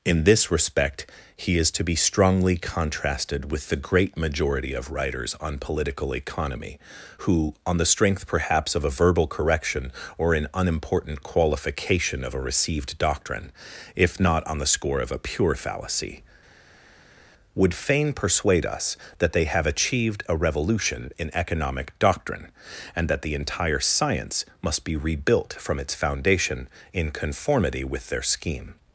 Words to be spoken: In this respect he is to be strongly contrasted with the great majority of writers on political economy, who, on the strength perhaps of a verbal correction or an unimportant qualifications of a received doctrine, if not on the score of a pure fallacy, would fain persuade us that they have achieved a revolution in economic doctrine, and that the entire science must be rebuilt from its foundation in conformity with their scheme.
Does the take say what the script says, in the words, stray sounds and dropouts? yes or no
no